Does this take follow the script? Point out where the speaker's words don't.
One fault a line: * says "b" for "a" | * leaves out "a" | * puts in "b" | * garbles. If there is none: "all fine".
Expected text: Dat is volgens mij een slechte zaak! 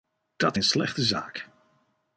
* leaves out "is volgens mij"